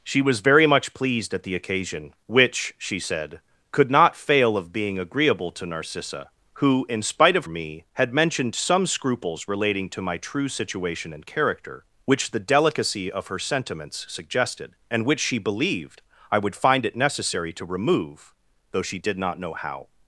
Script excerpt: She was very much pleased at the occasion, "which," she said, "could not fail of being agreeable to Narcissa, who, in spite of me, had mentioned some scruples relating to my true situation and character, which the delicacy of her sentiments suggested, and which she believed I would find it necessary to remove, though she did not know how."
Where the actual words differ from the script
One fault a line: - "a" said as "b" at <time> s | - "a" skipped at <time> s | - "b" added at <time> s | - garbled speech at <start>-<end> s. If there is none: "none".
none